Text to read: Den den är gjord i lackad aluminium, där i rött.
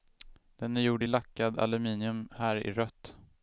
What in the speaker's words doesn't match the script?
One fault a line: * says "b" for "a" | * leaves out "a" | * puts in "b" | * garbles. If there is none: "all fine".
* leaves out "den"
* says "här" for "där"